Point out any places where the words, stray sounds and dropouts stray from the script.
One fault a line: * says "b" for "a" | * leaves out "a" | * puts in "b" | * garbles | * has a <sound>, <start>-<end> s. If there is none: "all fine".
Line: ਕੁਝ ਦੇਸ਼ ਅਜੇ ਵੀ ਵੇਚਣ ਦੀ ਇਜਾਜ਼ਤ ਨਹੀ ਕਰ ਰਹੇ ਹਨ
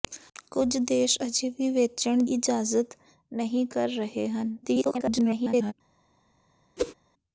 * leaves out "ਦੀ"
* garbles
* has a whoosh, 6.8-6.9 s